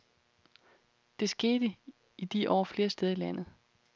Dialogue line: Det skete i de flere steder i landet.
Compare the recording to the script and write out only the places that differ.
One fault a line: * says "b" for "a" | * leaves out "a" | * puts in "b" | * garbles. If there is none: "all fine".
* puts in "år"